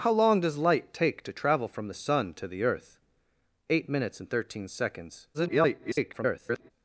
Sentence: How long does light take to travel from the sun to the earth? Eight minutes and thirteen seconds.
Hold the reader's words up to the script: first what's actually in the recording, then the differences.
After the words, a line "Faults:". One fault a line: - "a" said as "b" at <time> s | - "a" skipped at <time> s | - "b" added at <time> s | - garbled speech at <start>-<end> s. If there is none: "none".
How long does light take to travel from the sun to the earth? Eight minutes and thirteen seconds. [garbled]
Faults:
- garbled speech at 5.3-6.7 s